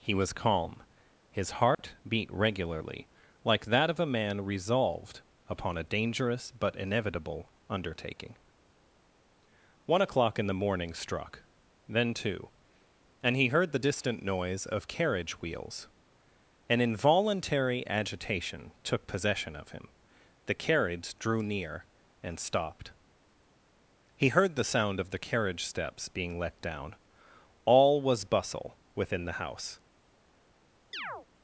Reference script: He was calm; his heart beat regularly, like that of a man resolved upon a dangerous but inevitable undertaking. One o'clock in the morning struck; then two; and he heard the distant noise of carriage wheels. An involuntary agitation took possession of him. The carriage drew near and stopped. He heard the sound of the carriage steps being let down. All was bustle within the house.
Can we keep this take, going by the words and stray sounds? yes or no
no